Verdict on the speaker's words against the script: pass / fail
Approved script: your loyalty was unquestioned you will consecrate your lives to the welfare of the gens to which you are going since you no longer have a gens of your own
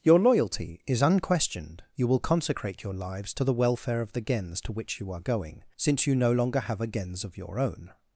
fail